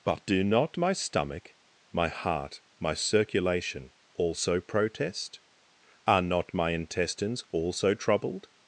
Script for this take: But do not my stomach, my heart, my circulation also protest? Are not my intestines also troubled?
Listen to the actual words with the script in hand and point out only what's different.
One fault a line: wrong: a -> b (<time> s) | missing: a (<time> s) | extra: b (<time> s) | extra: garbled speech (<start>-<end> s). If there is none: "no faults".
no faults